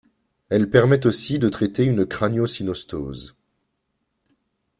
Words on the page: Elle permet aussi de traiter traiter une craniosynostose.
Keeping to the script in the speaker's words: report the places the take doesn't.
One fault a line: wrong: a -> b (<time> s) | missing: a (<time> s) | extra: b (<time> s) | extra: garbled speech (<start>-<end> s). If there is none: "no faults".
missing: traiter (1.8 s)